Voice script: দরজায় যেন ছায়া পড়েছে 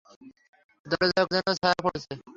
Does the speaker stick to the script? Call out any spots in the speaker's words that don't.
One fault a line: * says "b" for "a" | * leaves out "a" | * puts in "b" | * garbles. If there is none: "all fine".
all fine